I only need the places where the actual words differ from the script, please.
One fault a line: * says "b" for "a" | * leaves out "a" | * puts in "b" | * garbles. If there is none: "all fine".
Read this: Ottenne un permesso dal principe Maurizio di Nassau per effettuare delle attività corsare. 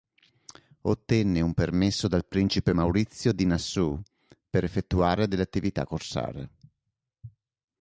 all fine